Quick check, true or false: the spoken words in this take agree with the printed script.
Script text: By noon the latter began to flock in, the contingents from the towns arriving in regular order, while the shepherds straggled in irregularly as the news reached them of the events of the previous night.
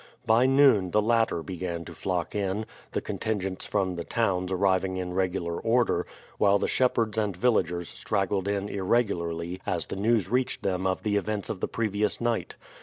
false